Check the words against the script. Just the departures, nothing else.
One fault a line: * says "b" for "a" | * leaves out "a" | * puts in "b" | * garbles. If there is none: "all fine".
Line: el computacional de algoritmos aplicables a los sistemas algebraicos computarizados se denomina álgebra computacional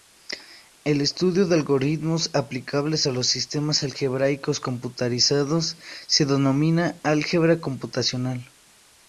* says "estudio" for "computacional"